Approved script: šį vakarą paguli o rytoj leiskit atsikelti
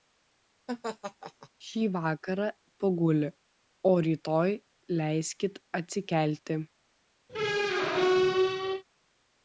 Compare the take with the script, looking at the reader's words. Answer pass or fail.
pass